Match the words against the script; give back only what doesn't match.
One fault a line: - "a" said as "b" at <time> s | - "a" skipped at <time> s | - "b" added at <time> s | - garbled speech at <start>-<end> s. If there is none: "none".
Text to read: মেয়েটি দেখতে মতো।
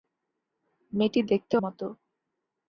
none